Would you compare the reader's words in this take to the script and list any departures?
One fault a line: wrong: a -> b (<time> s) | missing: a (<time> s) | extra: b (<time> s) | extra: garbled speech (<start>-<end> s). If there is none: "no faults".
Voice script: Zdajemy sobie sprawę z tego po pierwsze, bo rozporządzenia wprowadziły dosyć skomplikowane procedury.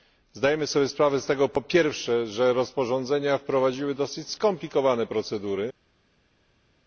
wrong: bo -> że (2.3 s)